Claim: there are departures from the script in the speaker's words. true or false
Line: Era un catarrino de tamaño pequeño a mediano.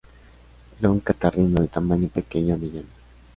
false